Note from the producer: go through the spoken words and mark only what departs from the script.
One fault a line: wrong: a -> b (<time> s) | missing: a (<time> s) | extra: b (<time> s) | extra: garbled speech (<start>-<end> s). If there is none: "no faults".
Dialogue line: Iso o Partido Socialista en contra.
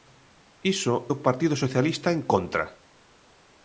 no faults